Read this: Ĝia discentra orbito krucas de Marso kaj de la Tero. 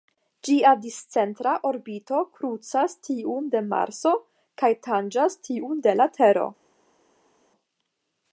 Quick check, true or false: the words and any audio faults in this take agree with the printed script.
false